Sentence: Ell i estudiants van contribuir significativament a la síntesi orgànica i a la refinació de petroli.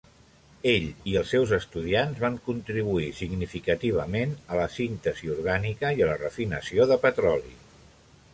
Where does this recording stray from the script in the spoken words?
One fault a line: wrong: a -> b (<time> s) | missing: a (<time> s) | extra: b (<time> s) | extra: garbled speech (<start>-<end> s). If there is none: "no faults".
extra: els seus (1.2 s)